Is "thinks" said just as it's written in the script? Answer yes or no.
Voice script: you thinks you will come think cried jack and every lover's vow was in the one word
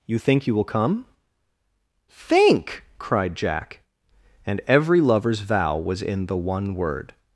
no